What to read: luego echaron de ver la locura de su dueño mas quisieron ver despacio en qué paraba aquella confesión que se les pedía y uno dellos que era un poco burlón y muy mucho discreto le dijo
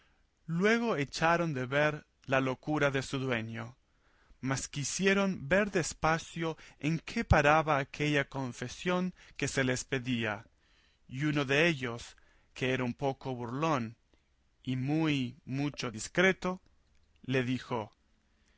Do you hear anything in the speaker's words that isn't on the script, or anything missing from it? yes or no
no